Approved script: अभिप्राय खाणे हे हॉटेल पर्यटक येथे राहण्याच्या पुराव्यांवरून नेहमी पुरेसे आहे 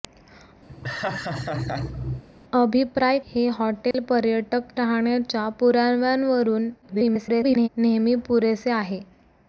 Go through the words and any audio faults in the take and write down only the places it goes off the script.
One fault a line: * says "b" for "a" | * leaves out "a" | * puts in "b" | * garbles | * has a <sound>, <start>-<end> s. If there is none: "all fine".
* has a laugh, 0.7-2.2 s
* leaves out "खाणे"
* has a dropout, 3.9-3.9 s
* leaves out "येथे"
* garbles